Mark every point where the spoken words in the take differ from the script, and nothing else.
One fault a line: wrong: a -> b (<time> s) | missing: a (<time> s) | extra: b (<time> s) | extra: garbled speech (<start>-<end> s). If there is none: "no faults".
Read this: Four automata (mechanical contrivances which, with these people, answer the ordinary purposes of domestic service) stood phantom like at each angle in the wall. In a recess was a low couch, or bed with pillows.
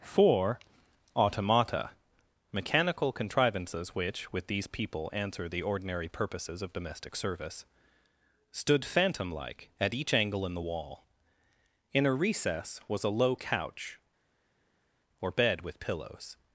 no faults